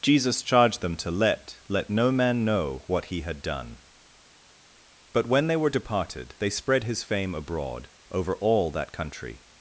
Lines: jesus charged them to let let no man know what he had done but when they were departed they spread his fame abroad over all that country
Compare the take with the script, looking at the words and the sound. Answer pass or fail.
pass